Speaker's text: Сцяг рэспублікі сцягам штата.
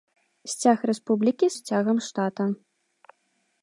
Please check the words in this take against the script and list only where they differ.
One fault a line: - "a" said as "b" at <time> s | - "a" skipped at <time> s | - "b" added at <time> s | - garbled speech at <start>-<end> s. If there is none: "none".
none